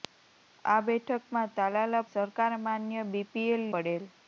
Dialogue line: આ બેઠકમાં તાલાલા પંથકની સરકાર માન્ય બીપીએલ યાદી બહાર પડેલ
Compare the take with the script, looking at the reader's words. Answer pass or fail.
fail